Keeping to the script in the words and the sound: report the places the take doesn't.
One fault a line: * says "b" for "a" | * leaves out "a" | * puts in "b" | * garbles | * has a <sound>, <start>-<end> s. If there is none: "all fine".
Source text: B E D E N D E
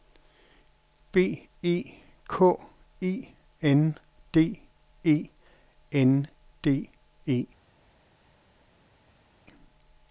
* puts in "K E N"